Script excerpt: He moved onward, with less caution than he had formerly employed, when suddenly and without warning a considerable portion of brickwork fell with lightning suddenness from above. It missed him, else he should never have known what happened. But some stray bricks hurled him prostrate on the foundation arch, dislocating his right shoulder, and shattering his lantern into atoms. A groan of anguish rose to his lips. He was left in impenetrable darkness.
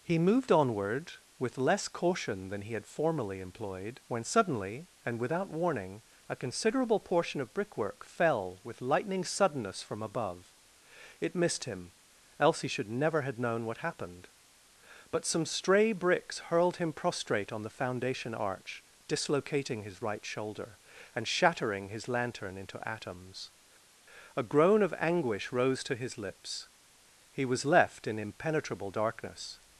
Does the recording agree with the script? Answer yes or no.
yes